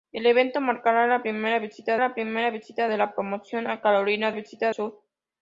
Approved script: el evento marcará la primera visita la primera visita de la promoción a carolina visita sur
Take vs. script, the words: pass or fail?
pass